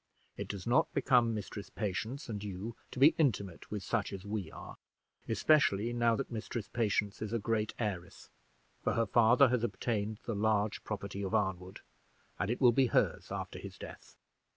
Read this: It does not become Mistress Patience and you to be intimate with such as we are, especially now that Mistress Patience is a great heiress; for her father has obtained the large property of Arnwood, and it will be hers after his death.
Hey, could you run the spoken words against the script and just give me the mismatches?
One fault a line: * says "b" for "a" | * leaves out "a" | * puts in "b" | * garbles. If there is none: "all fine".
all fine